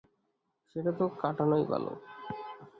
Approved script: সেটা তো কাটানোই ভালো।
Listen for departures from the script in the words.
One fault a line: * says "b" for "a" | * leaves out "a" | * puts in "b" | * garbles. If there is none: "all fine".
all fine